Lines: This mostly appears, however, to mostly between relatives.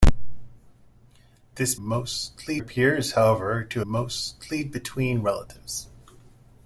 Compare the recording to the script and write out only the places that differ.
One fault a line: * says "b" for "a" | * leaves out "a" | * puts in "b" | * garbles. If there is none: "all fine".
all fine